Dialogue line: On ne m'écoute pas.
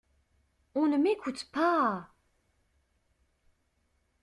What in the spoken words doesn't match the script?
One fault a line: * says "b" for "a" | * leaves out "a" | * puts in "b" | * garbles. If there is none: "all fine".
all fine